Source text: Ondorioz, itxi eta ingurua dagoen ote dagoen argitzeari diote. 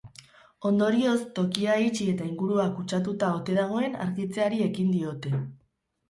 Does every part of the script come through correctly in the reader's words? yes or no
no